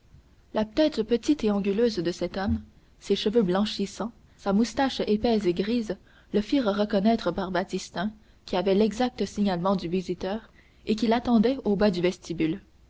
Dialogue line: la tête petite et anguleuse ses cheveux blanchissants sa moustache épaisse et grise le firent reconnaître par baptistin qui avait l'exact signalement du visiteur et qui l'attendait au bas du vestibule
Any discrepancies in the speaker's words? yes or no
yes